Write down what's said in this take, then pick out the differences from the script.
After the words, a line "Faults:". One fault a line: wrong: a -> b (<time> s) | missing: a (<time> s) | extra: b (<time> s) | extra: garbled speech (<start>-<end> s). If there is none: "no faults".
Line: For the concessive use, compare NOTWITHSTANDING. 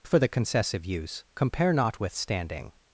For the concessive use, compare NOTWITHSTANDING.
Faults:
no faults